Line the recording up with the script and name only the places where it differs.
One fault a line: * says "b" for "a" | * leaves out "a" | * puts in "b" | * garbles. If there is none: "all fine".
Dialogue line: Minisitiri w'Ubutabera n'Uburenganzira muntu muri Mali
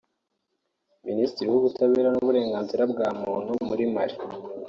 * puts in "bwa"